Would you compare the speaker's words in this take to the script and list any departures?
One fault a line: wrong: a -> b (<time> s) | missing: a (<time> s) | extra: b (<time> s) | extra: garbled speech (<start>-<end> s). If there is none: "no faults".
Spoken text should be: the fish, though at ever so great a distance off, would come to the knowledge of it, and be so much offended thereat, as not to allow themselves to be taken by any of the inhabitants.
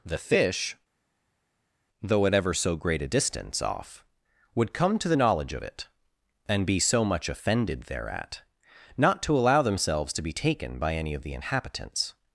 missing: as (8.4 s)